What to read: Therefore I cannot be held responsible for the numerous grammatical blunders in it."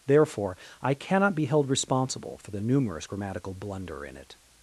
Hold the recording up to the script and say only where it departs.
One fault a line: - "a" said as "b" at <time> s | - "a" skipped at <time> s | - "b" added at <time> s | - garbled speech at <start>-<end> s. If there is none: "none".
- "blunders" said as "blunder" at 3.5 s